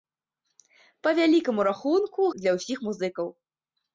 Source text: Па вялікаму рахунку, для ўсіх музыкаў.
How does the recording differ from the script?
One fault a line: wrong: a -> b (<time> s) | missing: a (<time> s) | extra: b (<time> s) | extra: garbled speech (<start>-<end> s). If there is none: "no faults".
no faults